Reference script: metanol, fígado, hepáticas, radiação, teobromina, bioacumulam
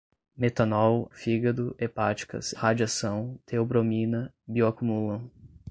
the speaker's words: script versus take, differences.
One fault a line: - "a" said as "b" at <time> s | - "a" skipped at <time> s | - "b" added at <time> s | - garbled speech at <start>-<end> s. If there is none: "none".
none